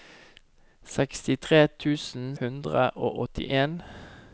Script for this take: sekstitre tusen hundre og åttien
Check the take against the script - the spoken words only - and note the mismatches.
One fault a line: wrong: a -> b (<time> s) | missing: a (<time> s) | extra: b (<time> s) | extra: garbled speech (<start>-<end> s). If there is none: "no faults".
no faults